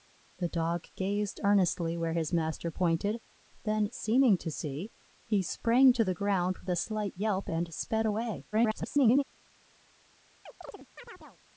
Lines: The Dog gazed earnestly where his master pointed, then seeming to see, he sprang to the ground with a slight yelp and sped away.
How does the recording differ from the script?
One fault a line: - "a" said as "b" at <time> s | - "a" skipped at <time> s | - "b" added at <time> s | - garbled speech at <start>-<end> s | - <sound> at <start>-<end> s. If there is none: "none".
- garbled speech at 8.5-9.2 s
- chirp at 10.5-11.4 s